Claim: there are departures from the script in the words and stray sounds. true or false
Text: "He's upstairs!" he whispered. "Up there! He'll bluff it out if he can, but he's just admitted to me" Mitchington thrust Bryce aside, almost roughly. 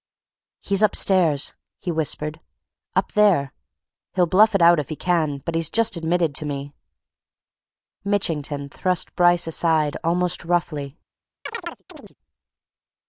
true